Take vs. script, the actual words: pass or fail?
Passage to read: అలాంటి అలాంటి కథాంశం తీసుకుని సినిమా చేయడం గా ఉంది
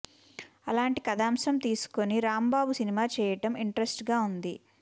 fail